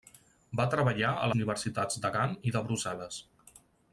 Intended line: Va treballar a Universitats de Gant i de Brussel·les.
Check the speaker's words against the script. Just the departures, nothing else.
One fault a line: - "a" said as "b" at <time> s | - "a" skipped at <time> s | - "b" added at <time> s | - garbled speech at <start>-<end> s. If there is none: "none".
none